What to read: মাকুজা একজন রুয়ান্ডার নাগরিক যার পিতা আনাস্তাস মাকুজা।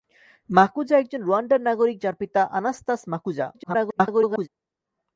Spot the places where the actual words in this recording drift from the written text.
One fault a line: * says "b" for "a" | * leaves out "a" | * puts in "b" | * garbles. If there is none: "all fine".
* garbles